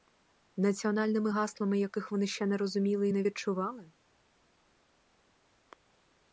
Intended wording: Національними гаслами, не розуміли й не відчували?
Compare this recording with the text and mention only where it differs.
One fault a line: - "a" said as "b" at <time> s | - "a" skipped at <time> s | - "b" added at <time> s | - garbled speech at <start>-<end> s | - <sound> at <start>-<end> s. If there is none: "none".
- "яких вони ще" added at 1.8 s